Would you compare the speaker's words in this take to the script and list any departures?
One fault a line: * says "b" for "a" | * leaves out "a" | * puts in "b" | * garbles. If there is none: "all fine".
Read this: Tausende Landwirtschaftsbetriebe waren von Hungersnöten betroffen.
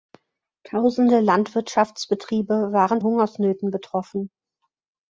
* leaves out "von"